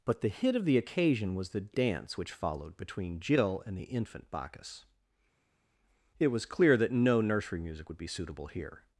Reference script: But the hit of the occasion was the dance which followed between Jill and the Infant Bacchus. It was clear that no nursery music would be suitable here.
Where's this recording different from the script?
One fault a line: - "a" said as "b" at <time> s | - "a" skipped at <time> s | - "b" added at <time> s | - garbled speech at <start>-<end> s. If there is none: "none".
none